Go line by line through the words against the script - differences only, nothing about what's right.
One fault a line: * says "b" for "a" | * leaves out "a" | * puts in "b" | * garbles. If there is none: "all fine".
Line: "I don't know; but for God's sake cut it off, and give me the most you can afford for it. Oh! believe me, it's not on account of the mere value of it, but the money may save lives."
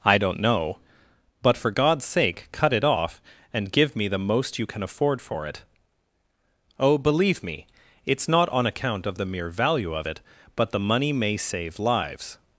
all fine